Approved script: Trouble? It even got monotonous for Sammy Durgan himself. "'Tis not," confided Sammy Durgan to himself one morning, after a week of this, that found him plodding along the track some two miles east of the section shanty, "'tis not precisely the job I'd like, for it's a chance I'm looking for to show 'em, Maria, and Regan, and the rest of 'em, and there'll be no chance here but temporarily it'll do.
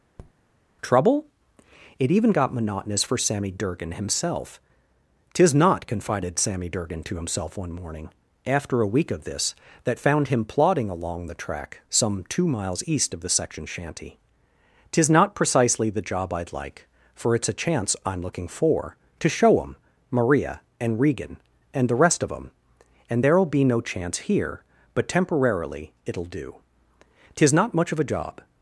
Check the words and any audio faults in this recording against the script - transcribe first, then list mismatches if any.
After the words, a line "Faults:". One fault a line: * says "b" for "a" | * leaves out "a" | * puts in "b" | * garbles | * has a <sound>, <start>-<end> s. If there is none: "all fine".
Trouble? It even got monotonous for Sammy Durgan himself. "'Tis not," confided Sammy Durgan to himself one morning, after a week of this, that found him plodding along the track some two miles east of the section shanty, "'tis not precisely the job I'd like, for it's a chance I'm looking for to show 'em, Maria, and Regan, and the rest of 'em, and there'll be no chance here but temporarily it'll do. 'Tis not much of a job
Faults:
* has a tap, 0.2-0.3 s
* puts in "Tis not much of a job"